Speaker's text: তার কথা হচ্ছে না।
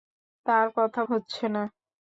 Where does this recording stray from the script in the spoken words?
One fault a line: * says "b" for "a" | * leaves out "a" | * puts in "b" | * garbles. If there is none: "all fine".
all fine